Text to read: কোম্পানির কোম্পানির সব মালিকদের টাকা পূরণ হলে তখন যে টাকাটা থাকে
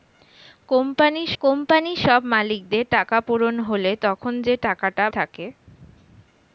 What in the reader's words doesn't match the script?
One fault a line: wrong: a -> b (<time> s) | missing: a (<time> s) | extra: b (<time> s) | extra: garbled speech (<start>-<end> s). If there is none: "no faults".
no faults